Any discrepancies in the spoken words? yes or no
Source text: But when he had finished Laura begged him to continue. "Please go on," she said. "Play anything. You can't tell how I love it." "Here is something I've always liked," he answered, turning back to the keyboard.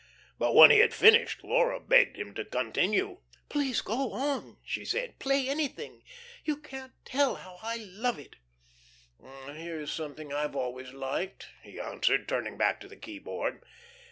no